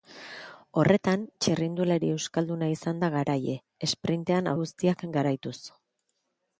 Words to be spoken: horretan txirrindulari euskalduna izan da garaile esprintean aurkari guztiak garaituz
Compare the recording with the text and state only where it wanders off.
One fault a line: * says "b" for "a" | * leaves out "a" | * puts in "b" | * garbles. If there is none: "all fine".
* leaves out "aurkari"